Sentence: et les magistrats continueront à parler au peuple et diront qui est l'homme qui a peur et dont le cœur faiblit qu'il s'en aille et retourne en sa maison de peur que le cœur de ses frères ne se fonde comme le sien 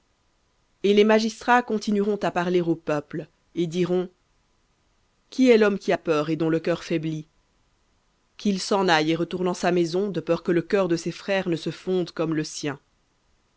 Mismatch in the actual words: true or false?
false